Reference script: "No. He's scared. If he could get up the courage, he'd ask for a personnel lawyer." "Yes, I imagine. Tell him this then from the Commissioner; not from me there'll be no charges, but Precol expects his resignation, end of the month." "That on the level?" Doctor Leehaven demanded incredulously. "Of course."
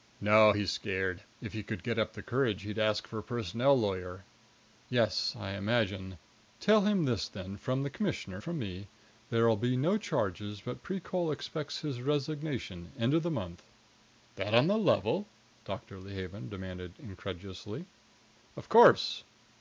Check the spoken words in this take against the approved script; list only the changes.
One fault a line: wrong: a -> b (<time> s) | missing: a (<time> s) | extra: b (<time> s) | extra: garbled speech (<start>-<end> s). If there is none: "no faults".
missing: not (8.4 s)